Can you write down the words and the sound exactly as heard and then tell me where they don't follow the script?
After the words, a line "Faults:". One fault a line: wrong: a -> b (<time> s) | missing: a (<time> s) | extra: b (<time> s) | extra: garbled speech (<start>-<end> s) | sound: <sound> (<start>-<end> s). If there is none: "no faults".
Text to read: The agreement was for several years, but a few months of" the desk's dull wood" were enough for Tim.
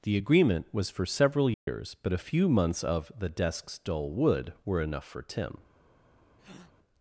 The agreement was for several years, but a few months of" the desk's dull wood" were enough for Tim.
Faults:
sound: dropout (1.5-1.7 s)
sound: breath (6.4-6.7 s)